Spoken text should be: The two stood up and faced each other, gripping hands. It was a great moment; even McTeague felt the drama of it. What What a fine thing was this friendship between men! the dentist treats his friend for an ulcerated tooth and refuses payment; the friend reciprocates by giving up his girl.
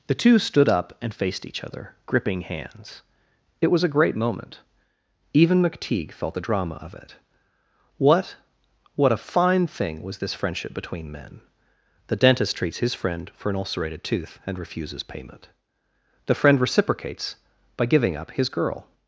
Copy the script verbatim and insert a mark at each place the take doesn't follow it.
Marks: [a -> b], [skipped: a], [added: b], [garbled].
The two stood up and faced each other, gripping hands. It was a great moment; even McTeague felt the drama of it. What What a fine thing was this friendship between men! the dentist treats his friend for an ulcerated tooth and refuses payment; the friend reciprocates by giving up his girl.